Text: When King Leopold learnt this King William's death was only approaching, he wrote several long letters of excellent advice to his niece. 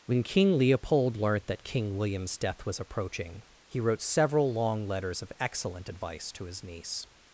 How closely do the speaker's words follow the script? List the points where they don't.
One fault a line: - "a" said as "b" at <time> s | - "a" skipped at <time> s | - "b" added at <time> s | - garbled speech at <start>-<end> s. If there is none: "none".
- "this" said as "that" at 1.5 s
- "only" skipped at 2.8 s